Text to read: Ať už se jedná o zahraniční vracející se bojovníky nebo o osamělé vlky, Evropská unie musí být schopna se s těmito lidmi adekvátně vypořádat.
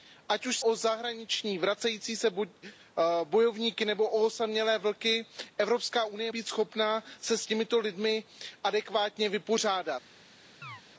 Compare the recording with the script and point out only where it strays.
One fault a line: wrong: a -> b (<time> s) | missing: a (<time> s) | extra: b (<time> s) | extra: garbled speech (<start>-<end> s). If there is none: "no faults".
missing: se jedná (0.6 s)
missing: musí (6.3 s)